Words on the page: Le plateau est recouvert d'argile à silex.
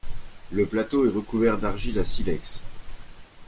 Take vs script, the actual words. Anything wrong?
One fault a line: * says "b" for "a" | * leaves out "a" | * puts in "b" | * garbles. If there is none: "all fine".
all fine